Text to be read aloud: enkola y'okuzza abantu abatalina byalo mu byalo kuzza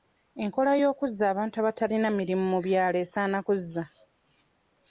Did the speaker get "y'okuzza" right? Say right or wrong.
right